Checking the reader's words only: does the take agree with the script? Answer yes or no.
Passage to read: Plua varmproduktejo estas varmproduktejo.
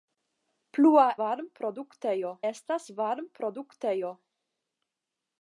yes